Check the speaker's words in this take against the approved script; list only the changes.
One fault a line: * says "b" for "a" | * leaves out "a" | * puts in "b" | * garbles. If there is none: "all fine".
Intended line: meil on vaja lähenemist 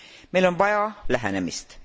all fine